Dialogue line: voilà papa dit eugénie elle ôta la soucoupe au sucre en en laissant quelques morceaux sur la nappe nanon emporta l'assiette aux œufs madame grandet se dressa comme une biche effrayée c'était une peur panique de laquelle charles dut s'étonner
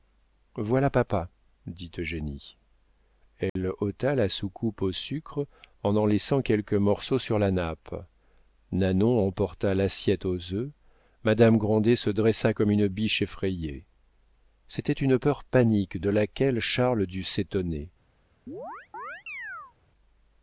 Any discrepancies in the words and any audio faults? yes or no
yes